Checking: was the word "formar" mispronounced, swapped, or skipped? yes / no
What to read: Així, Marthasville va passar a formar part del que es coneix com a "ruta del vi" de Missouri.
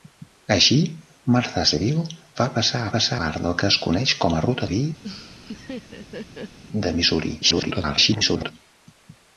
yes